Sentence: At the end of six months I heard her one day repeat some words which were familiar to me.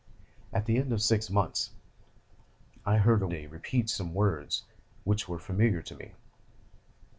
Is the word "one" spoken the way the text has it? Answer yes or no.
no